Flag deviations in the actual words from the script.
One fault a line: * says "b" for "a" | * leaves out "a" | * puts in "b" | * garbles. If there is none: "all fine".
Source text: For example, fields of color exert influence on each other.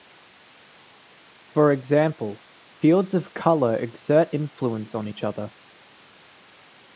all fine